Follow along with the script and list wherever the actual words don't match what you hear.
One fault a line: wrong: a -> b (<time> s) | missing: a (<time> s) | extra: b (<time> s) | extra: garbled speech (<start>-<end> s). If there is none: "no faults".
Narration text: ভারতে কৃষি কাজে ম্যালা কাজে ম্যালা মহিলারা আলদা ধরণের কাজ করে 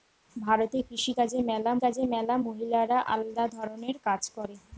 no faults